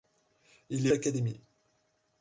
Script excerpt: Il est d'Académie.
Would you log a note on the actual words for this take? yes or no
no